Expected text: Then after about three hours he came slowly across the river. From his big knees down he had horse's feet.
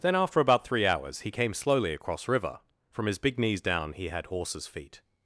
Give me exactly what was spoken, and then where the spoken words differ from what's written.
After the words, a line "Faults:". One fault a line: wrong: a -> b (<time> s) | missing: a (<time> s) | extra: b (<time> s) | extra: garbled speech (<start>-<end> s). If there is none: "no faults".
Then after about three hours he came slowly across river. From his big knees down he had horse's feet.
Faults:
missing: the (2.3 s)